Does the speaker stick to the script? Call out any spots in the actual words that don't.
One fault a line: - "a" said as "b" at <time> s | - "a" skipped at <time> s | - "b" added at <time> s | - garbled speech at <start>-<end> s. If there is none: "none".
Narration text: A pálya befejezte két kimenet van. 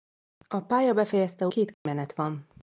none